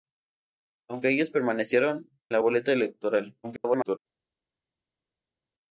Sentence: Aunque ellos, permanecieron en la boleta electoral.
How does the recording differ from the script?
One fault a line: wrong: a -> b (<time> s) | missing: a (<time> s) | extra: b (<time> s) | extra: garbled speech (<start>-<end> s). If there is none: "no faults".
missing: en (2.1 s)
extra: garbled speech (3.4-4.0 s)